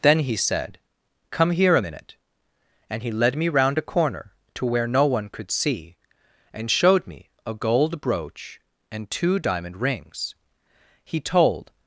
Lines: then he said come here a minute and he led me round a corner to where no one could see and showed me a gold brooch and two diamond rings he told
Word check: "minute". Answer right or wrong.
right